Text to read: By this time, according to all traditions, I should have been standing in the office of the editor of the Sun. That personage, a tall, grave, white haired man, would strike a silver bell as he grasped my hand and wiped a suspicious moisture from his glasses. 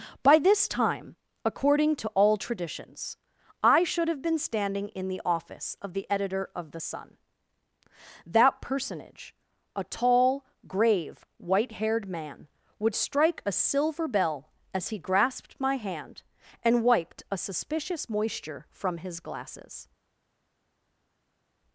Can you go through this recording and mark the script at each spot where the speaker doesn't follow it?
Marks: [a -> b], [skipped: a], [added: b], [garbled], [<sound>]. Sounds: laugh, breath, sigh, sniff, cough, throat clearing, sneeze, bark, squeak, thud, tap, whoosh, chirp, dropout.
By this time, according to all traditions, I should have been standing in the office of the editor of the Sun. That personage, a tall, grave, white haired man, would strike a silver bell as he grasped my hand and wiped a suspicious moisture from his glasses.